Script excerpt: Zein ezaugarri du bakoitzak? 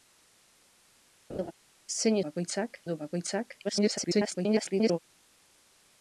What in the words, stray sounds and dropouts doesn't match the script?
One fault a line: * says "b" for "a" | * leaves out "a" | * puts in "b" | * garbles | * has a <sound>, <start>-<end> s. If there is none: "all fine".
* has a laugh, 1.3-1.5 s
* says "bakoitzak" for "ezaugarri"
* garbles